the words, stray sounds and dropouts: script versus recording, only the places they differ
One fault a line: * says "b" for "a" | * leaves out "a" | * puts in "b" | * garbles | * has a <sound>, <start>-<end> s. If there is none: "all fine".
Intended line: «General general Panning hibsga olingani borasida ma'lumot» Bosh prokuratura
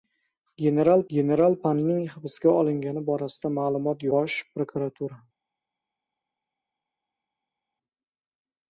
all fine